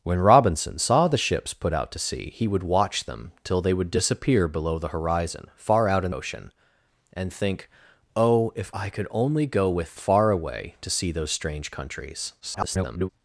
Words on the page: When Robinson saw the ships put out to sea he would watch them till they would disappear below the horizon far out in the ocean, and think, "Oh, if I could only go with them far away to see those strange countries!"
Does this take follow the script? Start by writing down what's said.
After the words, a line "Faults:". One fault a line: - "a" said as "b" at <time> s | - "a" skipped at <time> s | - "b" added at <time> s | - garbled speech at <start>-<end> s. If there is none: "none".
When Robinson saw the ships put out to sea he would watch them till they would disappear below the horizon far out in ocean, and think, "Oh, if I could only go with far away to see those strange countries!" [garbled]
Faults:
- "the" skipped at 6.1 s
- "them" skipped at 10.0 s
- garbled speech at 12.4-13.1 s